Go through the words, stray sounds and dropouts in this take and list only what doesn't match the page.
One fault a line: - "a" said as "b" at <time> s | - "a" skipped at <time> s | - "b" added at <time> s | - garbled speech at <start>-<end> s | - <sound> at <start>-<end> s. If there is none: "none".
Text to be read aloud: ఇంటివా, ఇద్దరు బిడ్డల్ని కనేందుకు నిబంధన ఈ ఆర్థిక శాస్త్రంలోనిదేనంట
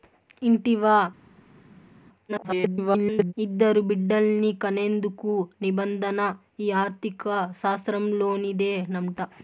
- garbled speech at 2.3-3.3 s